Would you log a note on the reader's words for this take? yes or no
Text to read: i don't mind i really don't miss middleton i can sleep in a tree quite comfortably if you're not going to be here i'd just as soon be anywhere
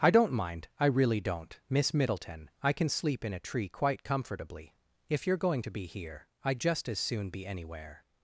yes